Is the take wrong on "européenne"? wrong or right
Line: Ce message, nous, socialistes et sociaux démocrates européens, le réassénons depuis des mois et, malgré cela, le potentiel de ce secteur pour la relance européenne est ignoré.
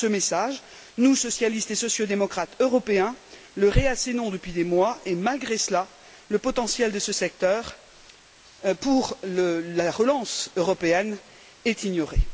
right